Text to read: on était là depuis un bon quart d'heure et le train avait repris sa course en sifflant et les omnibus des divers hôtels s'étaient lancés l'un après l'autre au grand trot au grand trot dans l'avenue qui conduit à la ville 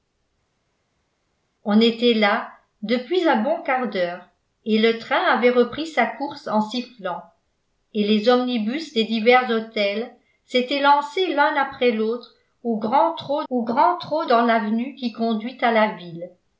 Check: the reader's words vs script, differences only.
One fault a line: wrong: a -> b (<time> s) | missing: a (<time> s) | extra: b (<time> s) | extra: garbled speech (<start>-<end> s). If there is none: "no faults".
no faults